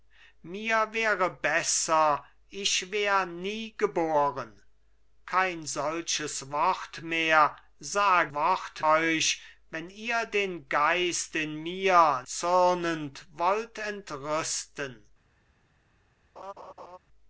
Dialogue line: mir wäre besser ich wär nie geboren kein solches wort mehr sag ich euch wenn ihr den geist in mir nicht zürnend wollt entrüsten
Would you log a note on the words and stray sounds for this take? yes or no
yes